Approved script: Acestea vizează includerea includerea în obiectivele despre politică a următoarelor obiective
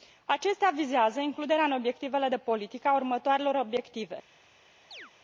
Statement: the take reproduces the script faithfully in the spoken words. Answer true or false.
false